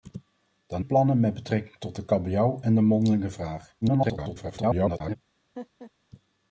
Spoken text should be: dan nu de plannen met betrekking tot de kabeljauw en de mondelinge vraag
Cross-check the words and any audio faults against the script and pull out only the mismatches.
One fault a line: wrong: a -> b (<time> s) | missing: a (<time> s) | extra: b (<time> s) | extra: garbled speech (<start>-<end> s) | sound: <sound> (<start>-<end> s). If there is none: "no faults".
missing: nu de (0.8 s)
extra: garbled speech (3.8-5.2 s)
sound: laugh (5.6-5.9 s)